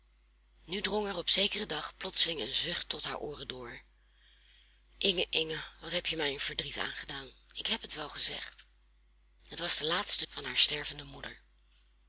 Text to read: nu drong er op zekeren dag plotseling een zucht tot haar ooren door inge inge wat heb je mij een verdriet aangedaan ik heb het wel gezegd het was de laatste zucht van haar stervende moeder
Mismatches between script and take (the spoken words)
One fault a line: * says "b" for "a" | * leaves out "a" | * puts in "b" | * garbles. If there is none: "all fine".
* leaves out "zucht"